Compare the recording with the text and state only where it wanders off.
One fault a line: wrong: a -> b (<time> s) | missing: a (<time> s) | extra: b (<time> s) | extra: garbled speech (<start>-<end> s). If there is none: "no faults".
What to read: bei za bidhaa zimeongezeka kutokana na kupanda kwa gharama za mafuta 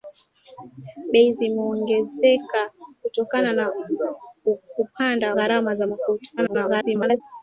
missing: za bidhaa (1.3 s)
missing: kwa (5.3 s)
extra: garbled speech (6.4-7.2 s)